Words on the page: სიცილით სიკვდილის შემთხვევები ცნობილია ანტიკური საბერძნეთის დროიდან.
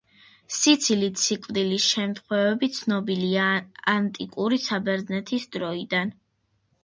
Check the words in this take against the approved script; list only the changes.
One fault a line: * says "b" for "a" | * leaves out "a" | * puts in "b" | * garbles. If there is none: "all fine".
all fine